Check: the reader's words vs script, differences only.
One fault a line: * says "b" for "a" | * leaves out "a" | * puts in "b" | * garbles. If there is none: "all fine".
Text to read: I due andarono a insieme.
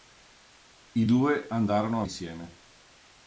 all fine